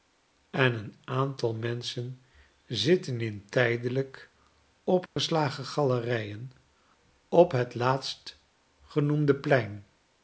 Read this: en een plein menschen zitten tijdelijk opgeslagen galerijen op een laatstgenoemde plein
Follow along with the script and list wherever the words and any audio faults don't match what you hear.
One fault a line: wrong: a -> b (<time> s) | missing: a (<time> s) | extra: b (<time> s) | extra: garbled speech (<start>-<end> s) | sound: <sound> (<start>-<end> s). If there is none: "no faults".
wrong: plein -> aantal (1.0 s)
extra: in (3.2 s)
sound: dropout (5.1-5.2 s)
wrong: een -> het (7.5 s)